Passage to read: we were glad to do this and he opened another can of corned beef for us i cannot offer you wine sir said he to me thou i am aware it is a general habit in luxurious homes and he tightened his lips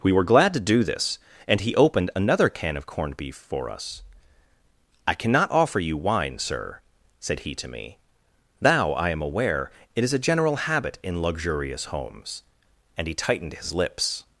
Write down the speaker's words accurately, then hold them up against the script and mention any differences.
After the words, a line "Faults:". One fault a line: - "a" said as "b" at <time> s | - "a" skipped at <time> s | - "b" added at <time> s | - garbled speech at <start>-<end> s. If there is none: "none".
we were glad to do this and he opened another can of corned beef for us i cannot offer you wine sir said he to me thou i am aware it is a general habit in luxurious homes and he tightened his lips
Faults:
none